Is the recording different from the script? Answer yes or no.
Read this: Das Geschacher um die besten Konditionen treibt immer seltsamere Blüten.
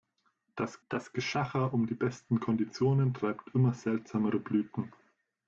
yes